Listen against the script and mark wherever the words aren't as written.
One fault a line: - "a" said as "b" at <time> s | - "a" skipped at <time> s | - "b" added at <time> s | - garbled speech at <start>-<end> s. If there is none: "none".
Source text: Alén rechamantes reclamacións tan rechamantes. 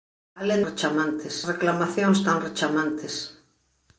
none